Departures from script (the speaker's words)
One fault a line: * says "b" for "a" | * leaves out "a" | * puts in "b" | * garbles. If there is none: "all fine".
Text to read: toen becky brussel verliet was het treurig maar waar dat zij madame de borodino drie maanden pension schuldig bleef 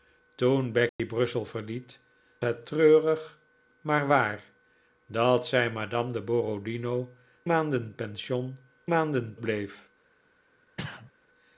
* leaves out "was"
* leaves out "drie"
* says "maanden" for "schuldig"